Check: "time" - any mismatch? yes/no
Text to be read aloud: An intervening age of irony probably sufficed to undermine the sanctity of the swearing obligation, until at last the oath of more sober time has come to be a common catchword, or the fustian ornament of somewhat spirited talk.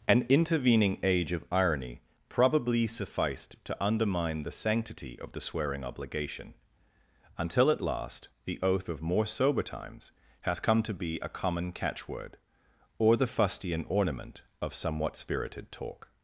yes